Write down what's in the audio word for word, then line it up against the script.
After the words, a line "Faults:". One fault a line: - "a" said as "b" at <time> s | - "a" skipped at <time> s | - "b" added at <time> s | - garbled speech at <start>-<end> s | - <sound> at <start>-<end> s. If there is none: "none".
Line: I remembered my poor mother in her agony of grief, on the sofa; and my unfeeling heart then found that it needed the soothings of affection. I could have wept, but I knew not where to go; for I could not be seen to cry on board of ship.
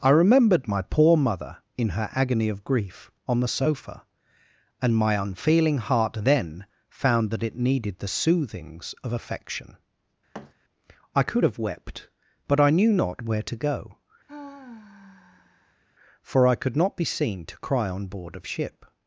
I remembered my poor mother in her agony of grief, on the sofa; and my unfeeling heart then found that it needed the soothings of affection. I could have wept, but I knew not where to go; for I could not be seen to cry on board of ship.
Faults:
- thud at 10.3-10.5 s
- sigh at 14.3-15.8 s